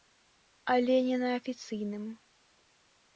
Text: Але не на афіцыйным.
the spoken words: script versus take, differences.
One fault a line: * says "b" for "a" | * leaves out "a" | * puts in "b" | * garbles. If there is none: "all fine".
all fine